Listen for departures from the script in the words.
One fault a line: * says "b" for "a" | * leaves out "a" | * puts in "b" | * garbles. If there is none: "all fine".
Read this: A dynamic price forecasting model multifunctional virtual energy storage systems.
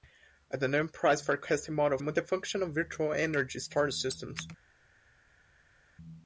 all fine